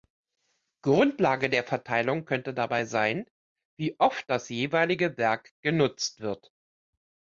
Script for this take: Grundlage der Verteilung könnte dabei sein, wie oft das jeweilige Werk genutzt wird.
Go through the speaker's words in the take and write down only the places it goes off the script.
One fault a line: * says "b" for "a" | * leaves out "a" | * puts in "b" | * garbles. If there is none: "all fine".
all fine